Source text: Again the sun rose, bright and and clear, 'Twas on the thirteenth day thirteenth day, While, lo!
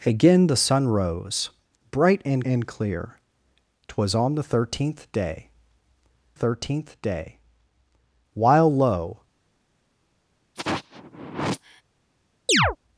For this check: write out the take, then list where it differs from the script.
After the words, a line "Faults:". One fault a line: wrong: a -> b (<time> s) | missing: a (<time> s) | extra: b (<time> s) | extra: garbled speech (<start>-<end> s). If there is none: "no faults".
Again the sun rose, bright and and clear, 'Twas on the thirteenth day thirteenth day, While, lo!
Faults:
no faults